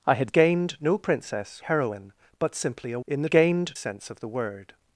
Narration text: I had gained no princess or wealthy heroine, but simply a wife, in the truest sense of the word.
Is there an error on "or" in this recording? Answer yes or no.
yes